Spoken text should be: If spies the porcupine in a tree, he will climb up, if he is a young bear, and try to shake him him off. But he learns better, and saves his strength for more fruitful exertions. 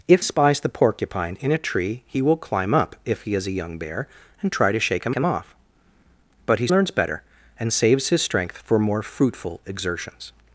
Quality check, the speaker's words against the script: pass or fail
pass